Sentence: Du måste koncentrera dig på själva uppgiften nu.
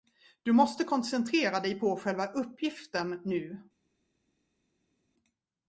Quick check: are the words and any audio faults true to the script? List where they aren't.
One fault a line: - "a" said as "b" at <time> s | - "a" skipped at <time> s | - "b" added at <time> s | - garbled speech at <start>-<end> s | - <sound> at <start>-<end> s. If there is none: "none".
none